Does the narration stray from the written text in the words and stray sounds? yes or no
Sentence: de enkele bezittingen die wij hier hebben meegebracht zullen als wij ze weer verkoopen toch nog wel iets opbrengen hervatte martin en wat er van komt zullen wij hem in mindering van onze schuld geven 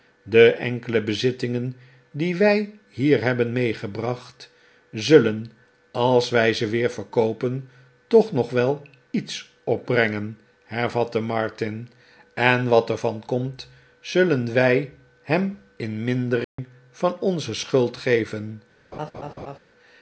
yes